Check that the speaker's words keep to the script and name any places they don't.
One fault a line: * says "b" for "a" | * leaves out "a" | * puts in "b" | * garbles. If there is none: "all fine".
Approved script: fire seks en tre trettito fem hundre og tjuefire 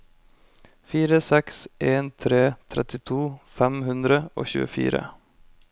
all fine